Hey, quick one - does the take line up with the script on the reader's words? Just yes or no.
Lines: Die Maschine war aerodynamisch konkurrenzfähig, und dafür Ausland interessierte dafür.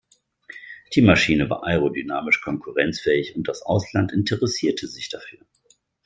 no